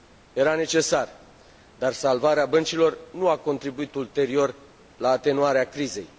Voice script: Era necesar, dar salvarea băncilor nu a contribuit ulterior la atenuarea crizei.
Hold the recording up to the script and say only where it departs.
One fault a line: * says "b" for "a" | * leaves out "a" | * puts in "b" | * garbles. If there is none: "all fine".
all fine